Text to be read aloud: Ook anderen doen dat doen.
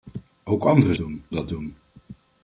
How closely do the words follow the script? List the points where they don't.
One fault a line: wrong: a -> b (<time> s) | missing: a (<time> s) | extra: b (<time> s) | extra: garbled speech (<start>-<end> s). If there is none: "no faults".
no faults